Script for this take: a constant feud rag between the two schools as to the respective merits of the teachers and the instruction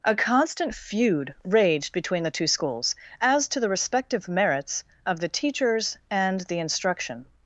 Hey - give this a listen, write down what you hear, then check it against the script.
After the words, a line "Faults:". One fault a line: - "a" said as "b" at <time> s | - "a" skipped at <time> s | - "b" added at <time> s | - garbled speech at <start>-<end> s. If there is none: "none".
a constant feud raged between the two schools as to the respective merits of the teachers and the instruction
Faults:
- "rag" said as "raged" at 1.4 s